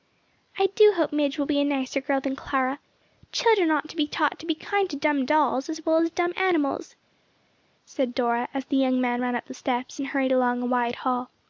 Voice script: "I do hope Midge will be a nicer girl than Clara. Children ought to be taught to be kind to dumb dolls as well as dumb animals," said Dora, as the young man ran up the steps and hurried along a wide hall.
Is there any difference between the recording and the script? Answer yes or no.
no